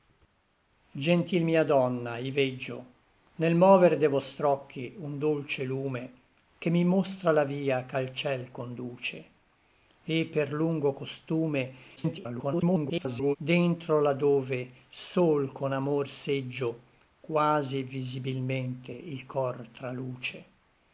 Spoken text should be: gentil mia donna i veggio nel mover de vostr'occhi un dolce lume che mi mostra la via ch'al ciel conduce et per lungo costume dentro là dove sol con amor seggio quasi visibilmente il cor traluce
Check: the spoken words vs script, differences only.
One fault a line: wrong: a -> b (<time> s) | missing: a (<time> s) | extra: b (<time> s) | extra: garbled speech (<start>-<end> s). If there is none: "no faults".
extra: garbled speech (12.0-13.4 s)